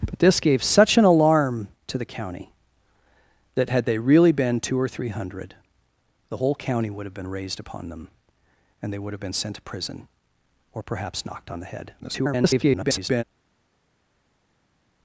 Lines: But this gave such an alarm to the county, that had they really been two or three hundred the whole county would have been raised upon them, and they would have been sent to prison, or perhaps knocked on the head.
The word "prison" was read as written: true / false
true